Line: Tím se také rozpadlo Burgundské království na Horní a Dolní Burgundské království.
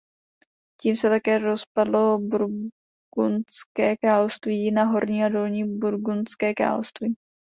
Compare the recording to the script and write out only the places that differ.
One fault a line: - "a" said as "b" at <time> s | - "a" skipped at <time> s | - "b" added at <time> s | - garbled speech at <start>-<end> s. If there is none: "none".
none